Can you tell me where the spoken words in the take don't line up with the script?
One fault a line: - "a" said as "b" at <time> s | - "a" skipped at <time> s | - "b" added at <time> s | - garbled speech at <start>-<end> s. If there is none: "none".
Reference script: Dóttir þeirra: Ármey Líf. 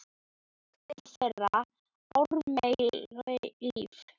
none